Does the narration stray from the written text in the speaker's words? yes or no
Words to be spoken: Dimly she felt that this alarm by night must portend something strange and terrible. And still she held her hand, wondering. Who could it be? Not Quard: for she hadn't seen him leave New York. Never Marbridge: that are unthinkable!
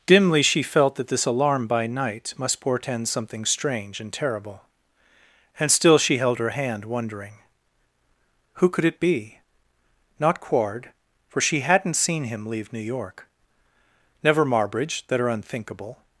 no